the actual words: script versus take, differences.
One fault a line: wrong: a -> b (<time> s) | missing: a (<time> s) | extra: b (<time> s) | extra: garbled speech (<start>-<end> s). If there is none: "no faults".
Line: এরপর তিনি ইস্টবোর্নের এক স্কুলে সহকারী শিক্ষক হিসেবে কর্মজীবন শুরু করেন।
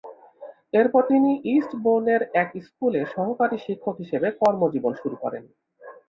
no faults